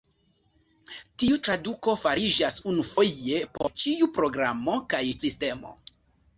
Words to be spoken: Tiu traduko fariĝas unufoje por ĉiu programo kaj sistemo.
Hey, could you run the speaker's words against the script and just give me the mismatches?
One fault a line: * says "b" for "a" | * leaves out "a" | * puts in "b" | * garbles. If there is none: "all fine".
all fine